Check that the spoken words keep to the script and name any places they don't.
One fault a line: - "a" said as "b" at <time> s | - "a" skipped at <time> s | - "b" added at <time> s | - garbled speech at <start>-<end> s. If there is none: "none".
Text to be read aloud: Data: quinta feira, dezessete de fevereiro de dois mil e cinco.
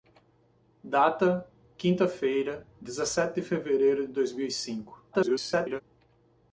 - garbled speech at 5.1-5.8 s